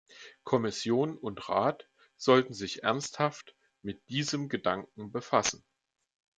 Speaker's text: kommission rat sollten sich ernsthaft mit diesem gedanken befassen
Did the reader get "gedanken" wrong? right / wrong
right